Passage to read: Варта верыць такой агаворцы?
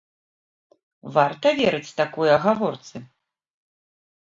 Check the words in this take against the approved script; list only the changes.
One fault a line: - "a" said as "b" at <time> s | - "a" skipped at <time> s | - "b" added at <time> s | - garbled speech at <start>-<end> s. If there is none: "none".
none